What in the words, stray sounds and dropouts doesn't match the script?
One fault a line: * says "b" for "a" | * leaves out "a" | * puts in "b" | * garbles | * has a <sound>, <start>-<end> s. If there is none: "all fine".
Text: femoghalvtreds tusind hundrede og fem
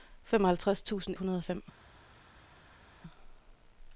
all fine